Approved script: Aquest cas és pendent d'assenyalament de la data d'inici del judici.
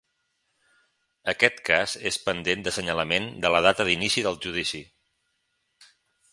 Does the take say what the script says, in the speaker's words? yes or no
yes